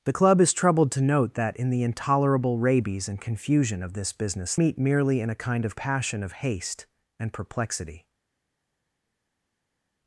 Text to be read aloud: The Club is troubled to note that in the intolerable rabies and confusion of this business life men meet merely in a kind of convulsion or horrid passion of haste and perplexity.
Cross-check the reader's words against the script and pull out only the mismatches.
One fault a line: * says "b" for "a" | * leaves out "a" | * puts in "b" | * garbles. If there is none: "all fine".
* leaves out "life men"
* leaves out "convulsion or horrid"